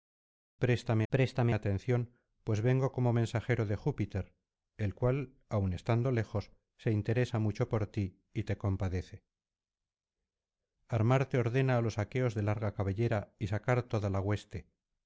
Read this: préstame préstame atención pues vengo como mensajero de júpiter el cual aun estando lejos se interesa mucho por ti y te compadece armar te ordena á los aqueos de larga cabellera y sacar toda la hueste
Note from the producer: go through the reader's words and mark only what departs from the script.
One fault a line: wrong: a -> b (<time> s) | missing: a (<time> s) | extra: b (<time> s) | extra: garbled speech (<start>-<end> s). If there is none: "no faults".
no faults